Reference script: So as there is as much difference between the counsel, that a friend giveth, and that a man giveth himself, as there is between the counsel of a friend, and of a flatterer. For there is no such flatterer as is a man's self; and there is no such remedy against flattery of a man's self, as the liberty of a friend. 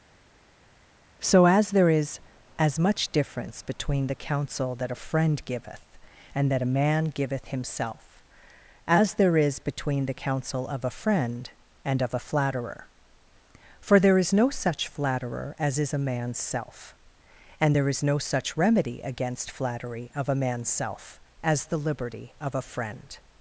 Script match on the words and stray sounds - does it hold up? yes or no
yes